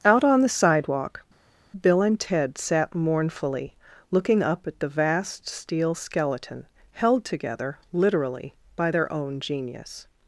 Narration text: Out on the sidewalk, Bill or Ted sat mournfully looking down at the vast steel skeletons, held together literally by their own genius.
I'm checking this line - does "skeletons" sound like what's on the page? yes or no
no